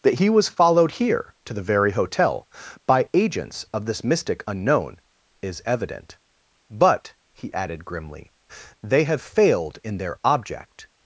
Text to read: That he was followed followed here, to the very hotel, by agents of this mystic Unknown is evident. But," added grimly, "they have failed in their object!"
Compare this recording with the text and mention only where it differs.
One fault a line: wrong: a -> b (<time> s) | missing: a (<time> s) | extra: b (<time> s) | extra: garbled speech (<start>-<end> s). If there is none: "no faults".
missing: followed (0.9 s)
extra: he (7.3 s)